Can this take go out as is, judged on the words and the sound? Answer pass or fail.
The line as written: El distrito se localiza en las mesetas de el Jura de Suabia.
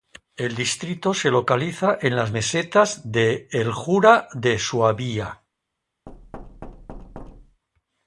fail